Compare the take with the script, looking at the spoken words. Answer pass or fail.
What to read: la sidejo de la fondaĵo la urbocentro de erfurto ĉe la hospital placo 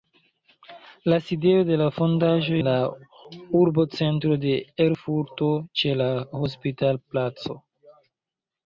pass